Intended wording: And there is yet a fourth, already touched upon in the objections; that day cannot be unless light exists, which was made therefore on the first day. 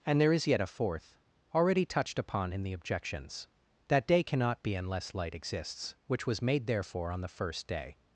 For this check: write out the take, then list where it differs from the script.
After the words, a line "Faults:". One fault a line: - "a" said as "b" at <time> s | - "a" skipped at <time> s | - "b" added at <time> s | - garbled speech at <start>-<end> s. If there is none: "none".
And there is yet a fourth, already touched upon in the objections; that day cannot be unless light exists, which was made therefore on the first day.
Faults:
none